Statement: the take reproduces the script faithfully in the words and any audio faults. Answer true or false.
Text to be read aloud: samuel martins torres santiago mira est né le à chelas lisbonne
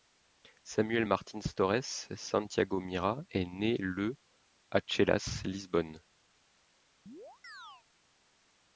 false